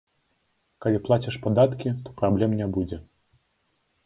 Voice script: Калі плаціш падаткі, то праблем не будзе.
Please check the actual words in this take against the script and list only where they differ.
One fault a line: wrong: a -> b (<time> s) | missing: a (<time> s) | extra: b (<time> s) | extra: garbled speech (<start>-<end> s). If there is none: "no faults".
no faults